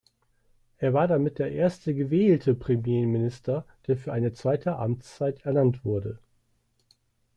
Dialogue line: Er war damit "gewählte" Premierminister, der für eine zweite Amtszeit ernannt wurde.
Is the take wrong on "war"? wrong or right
right